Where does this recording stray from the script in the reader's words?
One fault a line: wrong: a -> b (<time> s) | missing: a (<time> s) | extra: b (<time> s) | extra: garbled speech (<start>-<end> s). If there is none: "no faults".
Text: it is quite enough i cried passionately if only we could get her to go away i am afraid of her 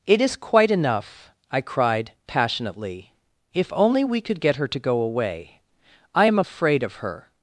no faults